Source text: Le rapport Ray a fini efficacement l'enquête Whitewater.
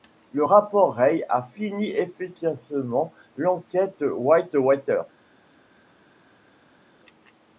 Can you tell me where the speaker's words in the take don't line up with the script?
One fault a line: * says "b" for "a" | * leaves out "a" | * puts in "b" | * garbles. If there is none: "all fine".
all fine